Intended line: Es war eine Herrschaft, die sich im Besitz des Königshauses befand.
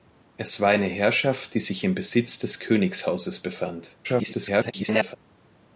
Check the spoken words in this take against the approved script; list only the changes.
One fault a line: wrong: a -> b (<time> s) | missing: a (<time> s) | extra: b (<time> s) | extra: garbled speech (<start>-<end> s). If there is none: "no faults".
extra: garbled speech (4.0-5.2 s)